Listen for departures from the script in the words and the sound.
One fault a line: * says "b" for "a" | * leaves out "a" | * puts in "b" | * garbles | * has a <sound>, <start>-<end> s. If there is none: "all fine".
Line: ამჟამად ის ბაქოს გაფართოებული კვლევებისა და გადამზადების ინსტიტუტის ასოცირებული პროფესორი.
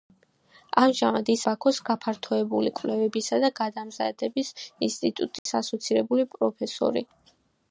* has a dropout, 5.4-5.5 s